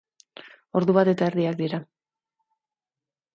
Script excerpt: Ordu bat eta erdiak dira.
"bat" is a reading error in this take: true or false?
false